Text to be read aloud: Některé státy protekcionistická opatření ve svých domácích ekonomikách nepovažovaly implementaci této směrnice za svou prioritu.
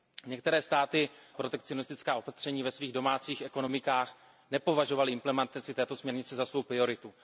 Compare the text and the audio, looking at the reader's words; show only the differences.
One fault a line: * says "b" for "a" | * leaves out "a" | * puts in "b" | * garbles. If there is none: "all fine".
all fine